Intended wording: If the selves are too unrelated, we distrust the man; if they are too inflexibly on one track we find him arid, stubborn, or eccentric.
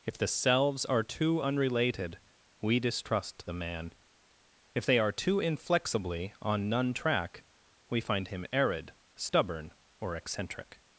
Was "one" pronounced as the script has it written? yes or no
no